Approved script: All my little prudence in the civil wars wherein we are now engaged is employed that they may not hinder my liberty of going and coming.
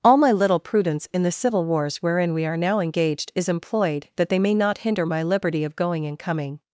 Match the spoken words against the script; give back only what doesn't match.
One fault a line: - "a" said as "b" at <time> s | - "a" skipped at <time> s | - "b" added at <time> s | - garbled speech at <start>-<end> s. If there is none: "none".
none